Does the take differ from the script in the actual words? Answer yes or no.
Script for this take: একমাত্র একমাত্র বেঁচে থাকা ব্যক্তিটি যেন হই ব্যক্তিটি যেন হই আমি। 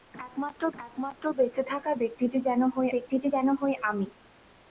no